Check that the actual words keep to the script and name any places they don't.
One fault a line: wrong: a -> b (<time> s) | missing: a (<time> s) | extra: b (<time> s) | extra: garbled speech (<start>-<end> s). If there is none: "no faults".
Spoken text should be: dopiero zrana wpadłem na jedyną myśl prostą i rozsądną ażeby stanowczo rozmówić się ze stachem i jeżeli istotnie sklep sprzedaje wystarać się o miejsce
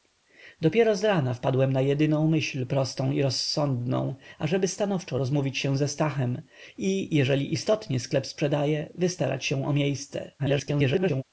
extra: garbled speech (10.4-11.2 s)